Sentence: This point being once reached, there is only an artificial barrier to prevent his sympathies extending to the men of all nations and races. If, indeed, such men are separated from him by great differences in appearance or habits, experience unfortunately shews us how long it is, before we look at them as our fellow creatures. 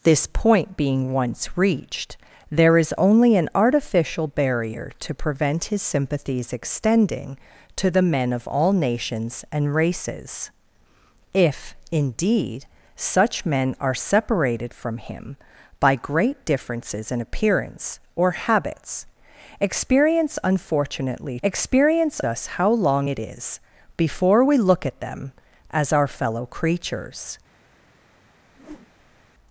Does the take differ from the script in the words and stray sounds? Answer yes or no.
yes